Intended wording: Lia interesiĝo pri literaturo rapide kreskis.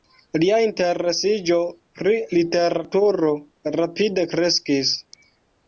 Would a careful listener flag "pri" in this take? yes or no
no